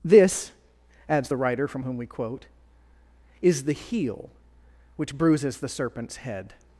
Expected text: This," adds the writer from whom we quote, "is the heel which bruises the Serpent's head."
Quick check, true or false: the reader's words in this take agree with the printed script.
true